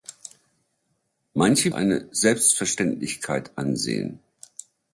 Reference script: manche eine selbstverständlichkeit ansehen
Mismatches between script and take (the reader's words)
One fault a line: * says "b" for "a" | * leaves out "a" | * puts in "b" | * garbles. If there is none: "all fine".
all fine